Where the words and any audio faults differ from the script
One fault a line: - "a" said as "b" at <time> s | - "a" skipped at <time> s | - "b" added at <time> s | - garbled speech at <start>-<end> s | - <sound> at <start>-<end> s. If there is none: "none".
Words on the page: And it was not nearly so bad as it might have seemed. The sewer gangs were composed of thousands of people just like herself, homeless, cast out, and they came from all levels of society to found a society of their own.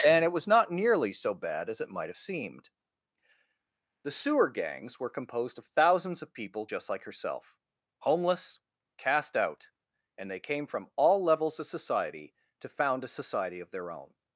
none